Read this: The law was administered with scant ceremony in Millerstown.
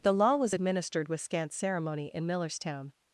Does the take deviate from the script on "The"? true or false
false